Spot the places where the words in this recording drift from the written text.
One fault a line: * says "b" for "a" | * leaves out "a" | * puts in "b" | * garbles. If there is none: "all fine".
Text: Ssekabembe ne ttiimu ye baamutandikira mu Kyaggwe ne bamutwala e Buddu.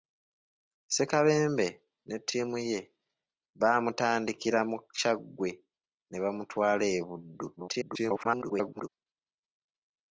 * garbles